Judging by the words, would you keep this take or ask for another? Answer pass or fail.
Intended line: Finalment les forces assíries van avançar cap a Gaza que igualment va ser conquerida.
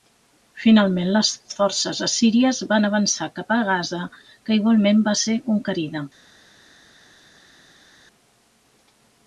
pass